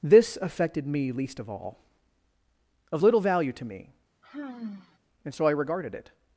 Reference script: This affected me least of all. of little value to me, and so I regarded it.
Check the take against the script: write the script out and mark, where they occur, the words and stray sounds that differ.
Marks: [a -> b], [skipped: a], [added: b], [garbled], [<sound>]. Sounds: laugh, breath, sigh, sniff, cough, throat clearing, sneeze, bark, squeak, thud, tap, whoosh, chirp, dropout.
This affected me least of all. of little value to me, [sigh] and so I regarded it.